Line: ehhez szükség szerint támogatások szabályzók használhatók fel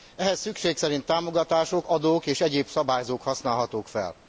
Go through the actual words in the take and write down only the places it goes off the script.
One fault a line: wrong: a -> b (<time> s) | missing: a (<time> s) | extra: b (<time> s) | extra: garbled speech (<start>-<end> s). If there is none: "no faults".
extra: adók és egyéb (1.9 s)